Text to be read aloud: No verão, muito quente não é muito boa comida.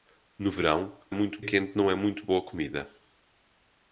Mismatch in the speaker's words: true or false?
false